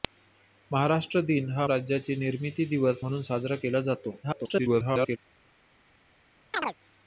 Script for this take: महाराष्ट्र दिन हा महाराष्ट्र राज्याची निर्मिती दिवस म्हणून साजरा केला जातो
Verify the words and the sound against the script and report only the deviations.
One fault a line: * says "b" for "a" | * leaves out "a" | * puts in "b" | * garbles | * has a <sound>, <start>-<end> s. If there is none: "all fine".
* leaves out "महाराष्ट्र"
* garbles
* has a chirp, 6.5-6.7 s